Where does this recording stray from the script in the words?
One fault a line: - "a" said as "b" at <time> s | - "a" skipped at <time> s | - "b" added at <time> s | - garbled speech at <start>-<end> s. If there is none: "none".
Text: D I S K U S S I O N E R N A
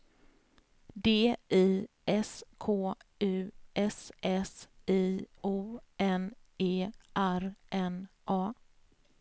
none